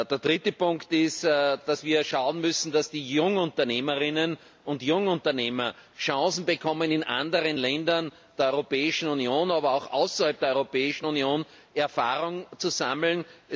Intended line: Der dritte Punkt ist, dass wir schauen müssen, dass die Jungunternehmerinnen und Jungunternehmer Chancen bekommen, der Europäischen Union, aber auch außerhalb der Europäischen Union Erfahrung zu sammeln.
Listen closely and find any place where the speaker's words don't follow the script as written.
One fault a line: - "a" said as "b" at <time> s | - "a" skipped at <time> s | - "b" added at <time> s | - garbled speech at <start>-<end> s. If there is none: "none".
- "in anderen Ländern" added at 6.9 s